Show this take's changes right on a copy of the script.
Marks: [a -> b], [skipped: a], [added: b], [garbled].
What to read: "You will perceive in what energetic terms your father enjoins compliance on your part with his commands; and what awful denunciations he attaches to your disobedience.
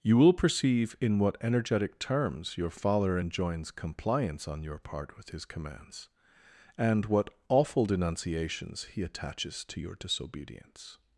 "You will perceive in what energetic terms your father enjoins compliance on your part with his commands; and what awful denunciations he attaches to your disobedience.